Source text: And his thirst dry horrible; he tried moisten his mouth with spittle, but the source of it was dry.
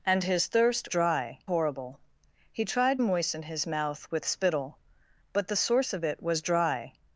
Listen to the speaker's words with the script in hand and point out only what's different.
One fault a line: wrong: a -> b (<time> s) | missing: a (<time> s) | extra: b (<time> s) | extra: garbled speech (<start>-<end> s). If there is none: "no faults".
no faults